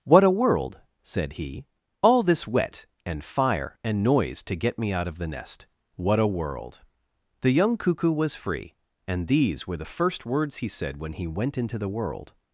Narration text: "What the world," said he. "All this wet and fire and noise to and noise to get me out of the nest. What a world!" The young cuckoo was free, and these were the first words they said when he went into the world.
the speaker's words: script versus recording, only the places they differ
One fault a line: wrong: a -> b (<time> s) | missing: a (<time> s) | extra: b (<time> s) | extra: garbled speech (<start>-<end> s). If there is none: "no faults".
wrong: the -> a (0.2 s)
missing: and noise to (4.5 s)
wrong: they -> he (10.6 s)